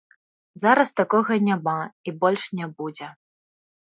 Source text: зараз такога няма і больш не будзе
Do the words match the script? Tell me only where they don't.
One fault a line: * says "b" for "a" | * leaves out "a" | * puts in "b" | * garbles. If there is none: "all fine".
all fine